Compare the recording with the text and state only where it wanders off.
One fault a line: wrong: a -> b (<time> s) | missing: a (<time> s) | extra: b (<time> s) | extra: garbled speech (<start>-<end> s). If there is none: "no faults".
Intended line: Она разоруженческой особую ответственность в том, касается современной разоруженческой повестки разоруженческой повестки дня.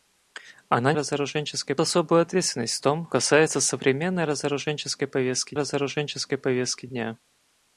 no faults